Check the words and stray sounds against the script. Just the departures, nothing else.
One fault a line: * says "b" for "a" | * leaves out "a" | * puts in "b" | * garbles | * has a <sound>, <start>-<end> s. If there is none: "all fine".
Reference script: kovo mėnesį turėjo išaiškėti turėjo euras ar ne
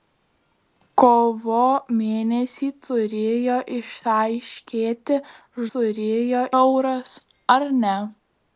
all fine